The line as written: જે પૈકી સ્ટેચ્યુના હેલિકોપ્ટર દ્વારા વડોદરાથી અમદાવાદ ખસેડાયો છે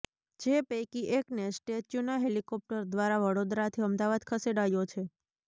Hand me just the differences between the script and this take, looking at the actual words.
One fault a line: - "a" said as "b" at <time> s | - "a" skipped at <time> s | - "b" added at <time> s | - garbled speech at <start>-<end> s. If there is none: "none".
- "એકને" added at 1.2 s